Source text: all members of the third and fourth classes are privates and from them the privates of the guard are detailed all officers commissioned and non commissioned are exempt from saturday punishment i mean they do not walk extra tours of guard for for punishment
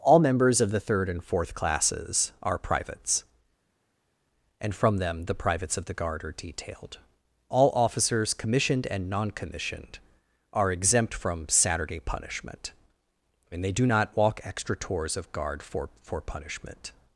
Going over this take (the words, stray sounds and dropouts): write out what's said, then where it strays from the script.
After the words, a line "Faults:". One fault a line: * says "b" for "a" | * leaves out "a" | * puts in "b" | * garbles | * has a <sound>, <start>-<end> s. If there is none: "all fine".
all members of the third and fourth classes are privates and from them the privates of the guard are detailed all officers commissioned and non commissioned are exempt from saturday punishment i mean they do not walk extra tours of guard for for punishment
Faults:
all fine